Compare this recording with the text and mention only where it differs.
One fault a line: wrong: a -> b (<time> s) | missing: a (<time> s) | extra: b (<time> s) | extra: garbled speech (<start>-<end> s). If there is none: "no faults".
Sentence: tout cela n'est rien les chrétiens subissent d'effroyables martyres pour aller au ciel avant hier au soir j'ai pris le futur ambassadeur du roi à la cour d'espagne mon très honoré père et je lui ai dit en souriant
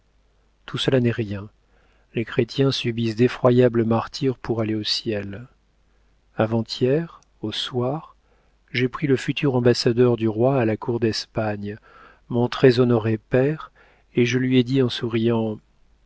no faults